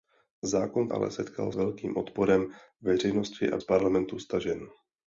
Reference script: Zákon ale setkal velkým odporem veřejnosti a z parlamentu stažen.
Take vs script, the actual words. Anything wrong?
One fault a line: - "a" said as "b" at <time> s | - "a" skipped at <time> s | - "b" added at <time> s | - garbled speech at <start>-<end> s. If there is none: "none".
none